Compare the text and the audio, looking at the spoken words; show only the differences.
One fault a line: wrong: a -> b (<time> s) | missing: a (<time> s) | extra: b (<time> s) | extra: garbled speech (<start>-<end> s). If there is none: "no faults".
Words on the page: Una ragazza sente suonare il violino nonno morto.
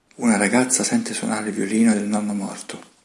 extra: del (1.9 s)